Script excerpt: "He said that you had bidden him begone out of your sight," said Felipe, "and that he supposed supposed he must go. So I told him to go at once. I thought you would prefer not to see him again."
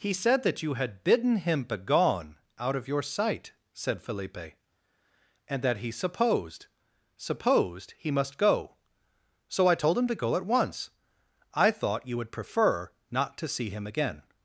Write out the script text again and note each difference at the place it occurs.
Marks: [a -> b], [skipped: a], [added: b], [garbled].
"He said that you had bidden him begone out of your sight," said Felipe, "and that he supposed supposed he must go. So I told him to go at once. I thought you would prefer not to see him again."